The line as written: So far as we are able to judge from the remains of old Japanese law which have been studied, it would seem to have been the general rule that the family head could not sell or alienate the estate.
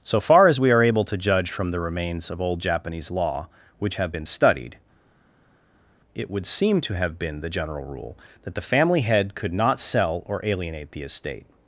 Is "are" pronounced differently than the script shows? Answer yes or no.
no